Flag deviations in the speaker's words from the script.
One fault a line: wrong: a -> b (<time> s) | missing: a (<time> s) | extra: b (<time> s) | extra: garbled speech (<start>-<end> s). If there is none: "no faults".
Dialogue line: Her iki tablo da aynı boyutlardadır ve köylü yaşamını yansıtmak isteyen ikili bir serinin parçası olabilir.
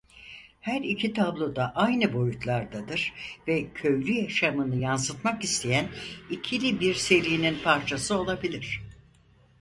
no faults